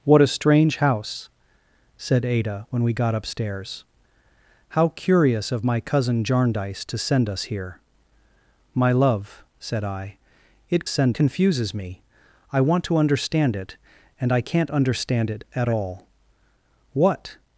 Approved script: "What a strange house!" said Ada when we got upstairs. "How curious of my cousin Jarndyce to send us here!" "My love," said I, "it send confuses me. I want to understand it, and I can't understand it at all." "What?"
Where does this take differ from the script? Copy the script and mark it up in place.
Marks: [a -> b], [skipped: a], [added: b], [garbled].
"What a strange house!" said Ada when we got upstairs. "How curious of my cousin Jarndyce to send us here!" "My love," said I, "it send confuses me. I want to understand it, and I can't understand it at all." "What?"